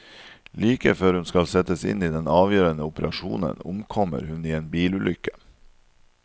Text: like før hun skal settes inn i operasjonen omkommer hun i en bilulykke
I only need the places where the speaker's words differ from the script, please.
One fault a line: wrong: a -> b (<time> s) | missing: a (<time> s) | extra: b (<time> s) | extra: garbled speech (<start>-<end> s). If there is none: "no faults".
extra: den avgjørende (2.1 s)